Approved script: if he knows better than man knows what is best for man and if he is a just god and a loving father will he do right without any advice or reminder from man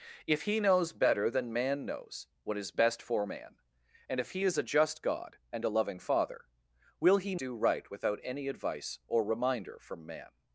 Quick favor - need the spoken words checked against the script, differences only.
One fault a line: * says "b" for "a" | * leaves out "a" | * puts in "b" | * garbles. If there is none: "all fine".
all fine